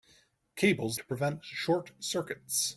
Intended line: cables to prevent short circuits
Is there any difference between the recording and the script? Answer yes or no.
no